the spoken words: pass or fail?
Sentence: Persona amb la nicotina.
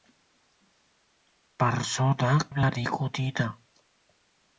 pass